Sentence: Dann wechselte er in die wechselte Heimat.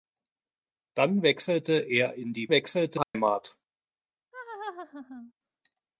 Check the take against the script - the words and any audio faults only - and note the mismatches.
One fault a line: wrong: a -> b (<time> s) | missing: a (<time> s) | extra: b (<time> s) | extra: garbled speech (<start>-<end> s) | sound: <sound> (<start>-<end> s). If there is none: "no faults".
sound: dropout (3.0-3.1 s)
sound: laugh (4.3-5.3 s)